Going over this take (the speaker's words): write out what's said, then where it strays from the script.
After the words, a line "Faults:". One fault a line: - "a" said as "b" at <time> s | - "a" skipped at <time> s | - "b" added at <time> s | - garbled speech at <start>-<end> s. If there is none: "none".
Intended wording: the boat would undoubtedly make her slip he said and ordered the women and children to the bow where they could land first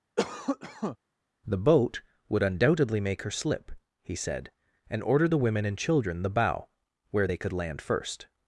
the boat would undoubtedly make her slip he said and ordered the women and children the bow where they could land first
Faults:
- "to" skipped at 6.2 s